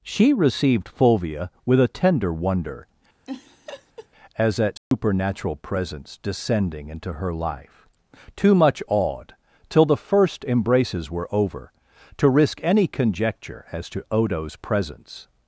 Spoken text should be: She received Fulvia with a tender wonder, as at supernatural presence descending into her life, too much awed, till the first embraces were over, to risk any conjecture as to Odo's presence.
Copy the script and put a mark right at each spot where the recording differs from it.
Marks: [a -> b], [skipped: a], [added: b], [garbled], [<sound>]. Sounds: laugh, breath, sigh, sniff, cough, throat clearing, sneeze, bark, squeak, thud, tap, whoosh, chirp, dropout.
She received Fulvia with a tender wonder, [laugh] as at supernatural [dropout] presence descending into her life, too much awed, till the first embraces were over, to risk any conjecture as to Odo's presence.